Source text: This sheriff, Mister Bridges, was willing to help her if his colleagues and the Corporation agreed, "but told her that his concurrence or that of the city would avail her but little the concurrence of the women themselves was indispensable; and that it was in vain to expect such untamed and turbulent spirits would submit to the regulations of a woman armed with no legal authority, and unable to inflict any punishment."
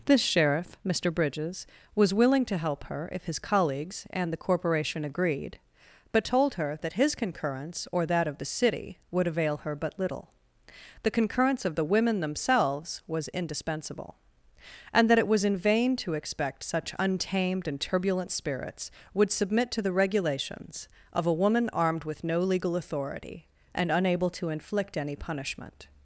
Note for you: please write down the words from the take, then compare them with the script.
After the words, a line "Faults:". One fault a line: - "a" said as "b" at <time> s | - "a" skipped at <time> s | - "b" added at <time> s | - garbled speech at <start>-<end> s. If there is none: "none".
This sheriff, Mister Bridges, was willing to help her if his colleagues and the Corporation agreed, "but told her that his concurrence or that of the city would avail her but little the concurrence of the women themselves was indispensable; and that it was in vain to expect such untamed and turbulent spirits would submit to the regulations of a woman armed with no legal authority, and unable to inflict any punishment."
Faults:
none